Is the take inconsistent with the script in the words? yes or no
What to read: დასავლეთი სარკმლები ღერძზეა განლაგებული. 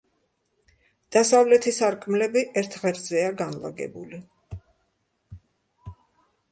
yes